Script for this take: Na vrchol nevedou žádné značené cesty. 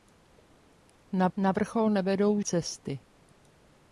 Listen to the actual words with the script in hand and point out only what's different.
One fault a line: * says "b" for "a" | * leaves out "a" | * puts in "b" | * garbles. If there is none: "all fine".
* puts in "na"
* leaves out "žádné značené"